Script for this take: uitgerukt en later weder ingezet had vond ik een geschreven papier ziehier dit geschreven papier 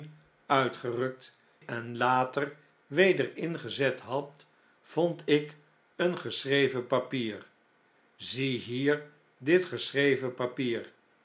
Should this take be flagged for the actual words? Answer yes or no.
no